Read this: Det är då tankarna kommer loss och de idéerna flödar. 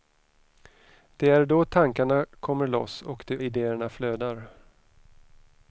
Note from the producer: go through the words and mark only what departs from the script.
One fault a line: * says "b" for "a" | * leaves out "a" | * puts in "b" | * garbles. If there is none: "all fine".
all fine